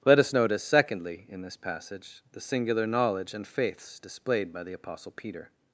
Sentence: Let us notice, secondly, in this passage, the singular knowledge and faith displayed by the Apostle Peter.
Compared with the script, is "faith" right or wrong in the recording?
wrong